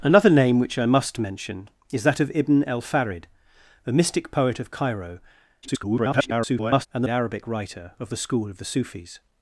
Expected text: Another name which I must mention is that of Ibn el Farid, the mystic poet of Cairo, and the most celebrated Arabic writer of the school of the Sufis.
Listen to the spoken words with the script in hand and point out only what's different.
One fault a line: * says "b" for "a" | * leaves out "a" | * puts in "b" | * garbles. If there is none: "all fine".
* garbles
* leaves out "most celebrated"